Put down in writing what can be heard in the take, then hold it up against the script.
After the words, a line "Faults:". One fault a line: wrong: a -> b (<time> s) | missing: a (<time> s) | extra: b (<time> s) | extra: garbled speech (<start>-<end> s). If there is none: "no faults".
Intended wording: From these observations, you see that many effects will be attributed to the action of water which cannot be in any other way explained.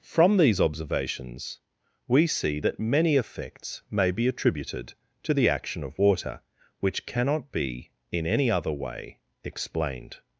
From these observations, we see that many effects may be attributed to the action of water which cannot be in any other way explained.
Faults:
wrong: you -> we (2.1 s)
wrong: will -> may (3.9 s)